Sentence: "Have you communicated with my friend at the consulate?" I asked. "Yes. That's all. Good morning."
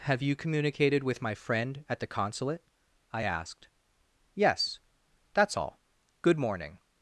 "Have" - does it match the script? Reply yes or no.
yes